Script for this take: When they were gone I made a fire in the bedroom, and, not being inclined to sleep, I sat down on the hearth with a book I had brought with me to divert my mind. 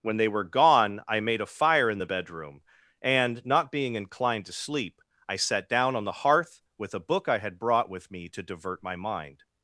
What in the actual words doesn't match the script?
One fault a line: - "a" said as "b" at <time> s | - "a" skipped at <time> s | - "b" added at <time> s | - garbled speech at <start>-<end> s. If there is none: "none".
none